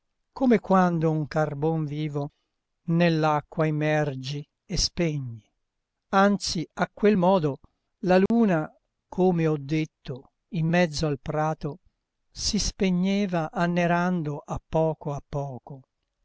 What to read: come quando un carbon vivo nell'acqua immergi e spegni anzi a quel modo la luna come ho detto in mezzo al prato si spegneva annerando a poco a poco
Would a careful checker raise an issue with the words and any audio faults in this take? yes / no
yes